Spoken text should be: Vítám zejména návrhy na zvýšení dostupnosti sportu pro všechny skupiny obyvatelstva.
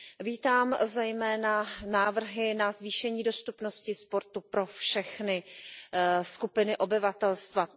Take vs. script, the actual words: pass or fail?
pass